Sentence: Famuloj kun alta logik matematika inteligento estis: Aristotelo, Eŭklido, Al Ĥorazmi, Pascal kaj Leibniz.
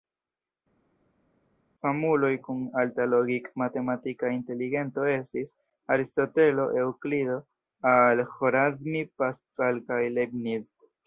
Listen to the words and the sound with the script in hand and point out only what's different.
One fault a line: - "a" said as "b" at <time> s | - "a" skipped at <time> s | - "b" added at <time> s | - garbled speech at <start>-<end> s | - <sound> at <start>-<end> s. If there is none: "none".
none